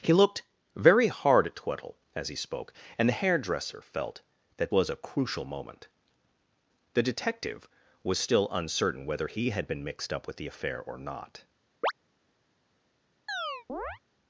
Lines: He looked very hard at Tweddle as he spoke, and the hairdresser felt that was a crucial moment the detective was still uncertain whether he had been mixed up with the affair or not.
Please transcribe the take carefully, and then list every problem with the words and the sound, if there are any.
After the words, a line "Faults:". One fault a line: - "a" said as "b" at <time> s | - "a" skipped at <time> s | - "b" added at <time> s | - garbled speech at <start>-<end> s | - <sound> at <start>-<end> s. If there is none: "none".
He looked very hard at Tweddle as he spoke, and the hairdresser felt that was a crucial moment the detective was still uncertain whether he had been mixed up with the affair or not.
Faults:
- chirp at 11.8-11.9 s
- chirp at 13.3-14.0 s